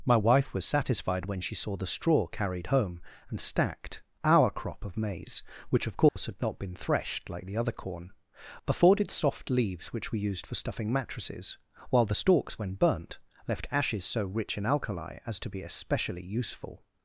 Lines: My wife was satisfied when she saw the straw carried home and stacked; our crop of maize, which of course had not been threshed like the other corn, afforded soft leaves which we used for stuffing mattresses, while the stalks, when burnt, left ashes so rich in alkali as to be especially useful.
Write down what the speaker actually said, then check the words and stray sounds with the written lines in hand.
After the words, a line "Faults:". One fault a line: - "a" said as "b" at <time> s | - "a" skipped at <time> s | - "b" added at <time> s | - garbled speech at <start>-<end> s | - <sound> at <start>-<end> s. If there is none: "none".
My wife was satisfied when she saw the straw carried home and stacked; our crop of maize, which of course had not been threshed like the other corn, afforded soft leaves which we used for stuffing mattresses, while the stalks, when burnt, left ashes so rich in alkali as to be especially useful.
Faults:
- dropout at 6.1-6.2 s